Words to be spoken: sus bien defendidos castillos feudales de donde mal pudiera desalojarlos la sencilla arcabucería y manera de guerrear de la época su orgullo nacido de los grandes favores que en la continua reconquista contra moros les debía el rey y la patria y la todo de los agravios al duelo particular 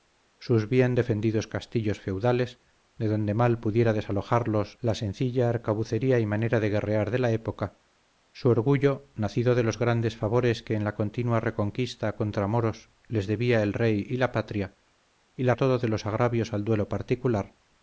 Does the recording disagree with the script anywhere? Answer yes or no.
no